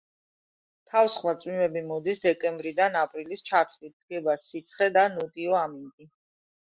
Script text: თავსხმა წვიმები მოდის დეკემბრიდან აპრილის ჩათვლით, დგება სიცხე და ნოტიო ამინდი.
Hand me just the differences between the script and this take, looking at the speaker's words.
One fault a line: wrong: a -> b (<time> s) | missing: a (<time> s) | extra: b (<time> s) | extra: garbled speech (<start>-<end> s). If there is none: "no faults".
no faults